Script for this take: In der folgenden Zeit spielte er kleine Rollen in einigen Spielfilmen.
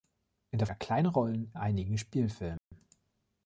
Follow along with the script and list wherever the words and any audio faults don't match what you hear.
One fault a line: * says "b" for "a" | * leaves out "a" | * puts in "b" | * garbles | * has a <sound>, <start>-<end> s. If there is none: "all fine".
* leaves out "folgenden Zeit spielte"
* leaves out "in"
* has a dropout, 2.6-2.7 s